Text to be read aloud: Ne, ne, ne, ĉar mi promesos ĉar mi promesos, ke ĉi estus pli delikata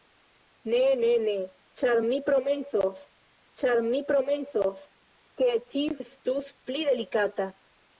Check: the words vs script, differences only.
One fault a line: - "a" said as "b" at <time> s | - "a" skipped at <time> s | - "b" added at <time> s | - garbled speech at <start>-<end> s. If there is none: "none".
none